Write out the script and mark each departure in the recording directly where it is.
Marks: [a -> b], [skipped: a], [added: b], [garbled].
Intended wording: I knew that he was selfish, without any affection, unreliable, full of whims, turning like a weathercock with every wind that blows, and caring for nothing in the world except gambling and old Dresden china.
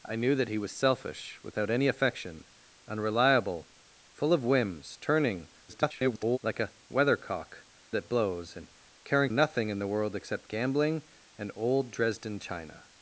I knew that he was selfish, without any affection, unreliable, full of whims, turning [garbled] like a weathercock [skipped: with every wind] that blows, and caring [skipped: for] nothing in the world except gambling and old Dresden china.